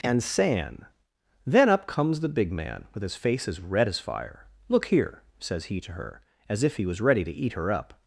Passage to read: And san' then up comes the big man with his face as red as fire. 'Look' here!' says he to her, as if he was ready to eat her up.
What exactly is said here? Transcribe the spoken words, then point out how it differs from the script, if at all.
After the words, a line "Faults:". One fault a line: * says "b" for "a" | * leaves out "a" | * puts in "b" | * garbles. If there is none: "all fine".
And san' then up comes the big man with his face as red as fire. 'Look' here!' says he to her, as if he was ready to eat her up.
Faults:
all fine